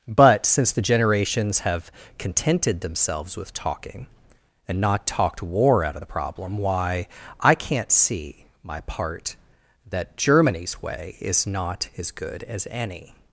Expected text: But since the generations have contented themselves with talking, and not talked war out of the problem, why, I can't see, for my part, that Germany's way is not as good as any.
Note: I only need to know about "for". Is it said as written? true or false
false